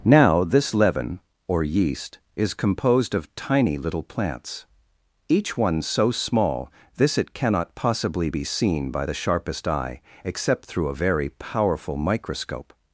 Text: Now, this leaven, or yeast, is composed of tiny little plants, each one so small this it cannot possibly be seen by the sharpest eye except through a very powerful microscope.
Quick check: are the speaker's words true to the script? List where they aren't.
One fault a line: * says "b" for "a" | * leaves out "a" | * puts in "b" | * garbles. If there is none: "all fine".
all fine